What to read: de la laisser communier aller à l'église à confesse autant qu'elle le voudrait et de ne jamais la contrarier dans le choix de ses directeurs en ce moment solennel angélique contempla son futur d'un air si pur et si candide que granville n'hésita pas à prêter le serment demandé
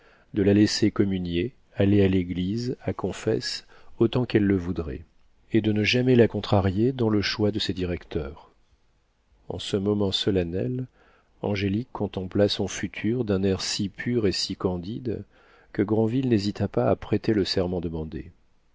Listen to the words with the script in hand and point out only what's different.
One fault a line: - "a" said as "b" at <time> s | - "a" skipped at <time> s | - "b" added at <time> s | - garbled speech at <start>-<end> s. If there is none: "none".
none